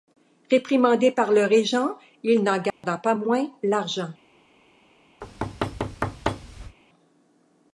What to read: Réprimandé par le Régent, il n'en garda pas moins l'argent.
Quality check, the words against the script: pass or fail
pass